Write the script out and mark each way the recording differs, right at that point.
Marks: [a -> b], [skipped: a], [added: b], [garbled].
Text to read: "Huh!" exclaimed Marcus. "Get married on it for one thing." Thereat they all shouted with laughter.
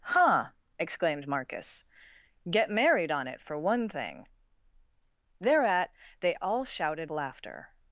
"Huh!" exclaimed Marcus. "Get married on it for one thing." Thereat they all shouted [skipped: with] laughter.